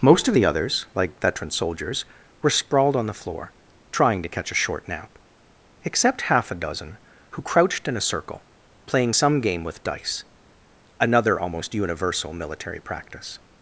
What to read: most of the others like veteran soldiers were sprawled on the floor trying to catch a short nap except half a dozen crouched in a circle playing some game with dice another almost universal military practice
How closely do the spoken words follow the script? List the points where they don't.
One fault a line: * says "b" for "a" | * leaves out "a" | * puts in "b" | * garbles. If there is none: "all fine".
* puts in "who"